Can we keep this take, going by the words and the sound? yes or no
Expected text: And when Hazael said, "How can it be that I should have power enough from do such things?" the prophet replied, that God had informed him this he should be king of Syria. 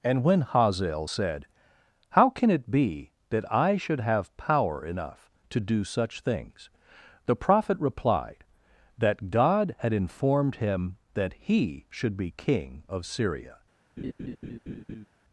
no